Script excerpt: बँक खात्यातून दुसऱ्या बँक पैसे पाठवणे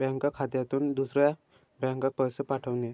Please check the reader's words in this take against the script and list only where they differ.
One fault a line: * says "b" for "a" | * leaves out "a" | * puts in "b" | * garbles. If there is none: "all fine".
all fine